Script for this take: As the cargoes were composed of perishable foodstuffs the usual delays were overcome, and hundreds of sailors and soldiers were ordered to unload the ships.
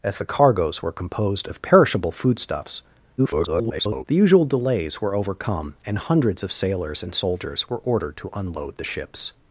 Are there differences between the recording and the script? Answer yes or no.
yes